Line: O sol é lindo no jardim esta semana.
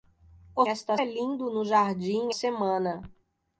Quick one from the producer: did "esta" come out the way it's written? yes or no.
no